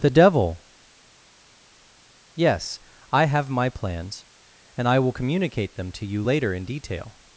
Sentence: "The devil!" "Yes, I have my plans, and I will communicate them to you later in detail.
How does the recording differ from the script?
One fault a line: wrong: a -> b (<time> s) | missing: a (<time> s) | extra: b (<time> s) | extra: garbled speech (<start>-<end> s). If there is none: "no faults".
no faults